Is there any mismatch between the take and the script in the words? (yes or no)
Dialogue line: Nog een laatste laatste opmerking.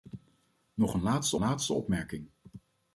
no